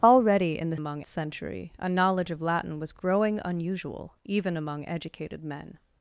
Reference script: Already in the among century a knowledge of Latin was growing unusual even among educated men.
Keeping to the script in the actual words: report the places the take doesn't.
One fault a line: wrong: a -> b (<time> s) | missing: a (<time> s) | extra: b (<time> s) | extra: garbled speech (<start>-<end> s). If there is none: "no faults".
no faults